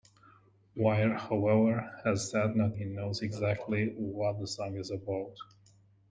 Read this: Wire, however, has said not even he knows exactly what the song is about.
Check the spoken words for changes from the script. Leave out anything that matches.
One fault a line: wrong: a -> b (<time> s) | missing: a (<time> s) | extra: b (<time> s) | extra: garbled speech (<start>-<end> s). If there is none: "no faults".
missing: even (2.8 s)